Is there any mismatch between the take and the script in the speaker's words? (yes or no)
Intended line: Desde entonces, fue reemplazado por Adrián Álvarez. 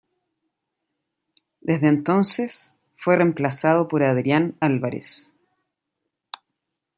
no